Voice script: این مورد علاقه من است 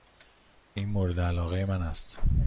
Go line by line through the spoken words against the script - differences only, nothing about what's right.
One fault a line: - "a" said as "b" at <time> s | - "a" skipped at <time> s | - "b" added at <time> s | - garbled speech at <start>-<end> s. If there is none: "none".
none